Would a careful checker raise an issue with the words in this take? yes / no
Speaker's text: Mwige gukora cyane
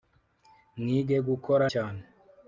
no